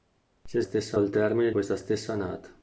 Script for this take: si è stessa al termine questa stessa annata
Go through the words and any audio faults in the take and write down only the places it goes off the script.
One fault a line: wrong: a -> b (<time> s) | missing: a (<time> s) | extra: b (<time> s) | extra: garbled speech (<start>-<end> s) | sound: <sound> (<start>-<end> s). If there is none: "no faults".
no faults